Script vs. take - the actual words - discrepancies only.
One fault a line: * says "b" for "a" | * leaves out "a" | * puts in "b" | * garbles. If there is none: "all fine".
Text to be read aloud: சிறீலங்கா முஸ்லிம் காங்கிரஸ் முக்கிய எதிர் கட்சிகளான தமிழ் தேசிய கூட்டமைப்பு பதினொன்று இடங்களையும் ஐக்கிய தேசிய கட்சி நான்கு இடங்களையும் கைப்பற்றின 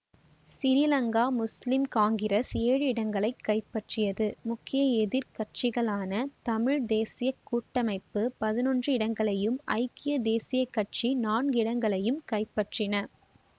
* puts in "ஏழு இடங்களை கைப்பற்றியது"